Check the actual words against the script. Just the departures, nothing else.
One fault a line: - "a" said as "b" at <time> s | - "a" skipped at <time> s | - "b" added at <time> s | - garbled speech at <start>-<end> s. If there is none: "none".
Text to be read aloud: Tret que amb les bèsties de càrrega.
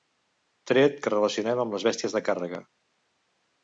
- "relacionem" added at 1.1 s